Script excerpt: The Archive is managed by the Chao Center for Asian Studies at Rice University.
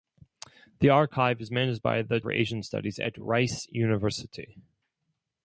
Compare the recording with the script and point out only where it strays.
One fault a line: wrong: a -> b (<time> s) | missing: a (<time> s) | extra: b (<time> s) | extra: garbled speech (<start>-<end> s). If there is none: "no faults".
missing: Chao Center (2.2 s)